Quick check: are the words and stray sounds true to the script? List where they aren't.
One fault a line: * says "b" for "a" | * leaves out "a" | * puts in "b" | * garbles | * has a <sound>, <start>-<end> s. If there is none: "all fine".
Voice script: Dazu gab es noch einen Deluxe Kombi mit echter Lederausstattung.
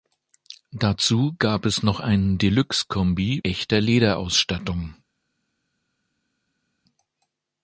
* leaves out "mit"